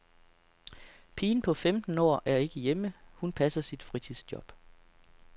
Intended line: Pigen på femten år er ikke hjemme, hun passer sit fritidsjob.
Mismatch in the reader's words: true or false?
false